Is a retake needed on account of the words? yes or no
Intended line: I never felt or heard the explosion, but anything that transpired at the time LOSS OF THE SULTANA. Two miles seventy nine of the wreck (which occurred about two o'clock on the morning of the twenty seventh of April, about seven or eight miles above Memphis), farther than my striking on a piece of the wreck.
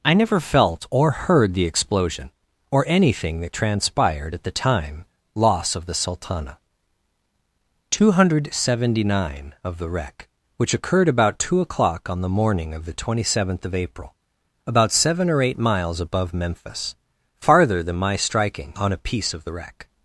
yes